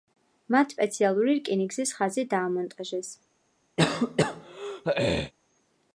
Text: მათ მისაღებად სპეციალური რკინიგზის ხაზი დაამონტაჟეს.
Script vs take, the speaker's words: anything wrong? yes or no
yes